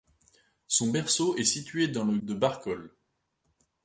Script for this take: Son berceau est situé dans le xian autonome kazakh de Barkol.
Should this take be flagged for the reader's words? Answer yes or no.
yes